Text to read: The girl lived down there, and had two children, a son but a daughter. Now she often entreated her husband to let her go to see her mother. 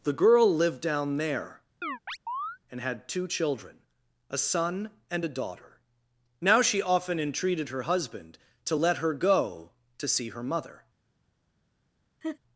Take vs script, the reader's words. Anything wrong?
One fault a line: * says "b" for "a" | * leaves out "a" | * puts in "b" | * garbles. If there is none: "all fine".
* says "and" for "but"